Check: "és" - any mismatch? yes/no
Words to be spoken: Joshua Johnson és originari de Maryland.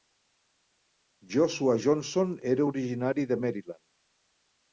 yes